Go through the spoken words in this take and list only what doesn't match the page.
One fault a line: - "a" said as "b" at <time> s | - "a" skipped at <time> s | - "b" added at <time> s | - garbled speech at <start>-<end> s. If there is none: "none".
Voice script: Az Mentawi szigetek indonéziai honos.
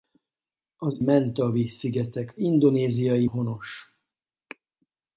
none